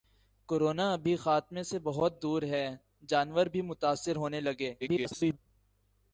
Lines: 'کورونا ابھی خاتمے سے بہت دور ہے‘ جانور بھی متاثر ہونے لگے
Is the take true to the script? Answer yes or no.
no